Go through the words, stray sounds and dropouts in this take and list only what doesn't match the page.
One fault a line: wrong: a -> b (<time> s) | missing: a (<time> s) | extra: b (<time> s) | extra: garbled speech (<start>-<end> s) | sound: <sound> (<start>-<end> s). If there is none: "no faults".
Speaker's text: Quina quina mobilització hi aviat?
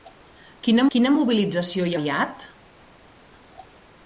no faults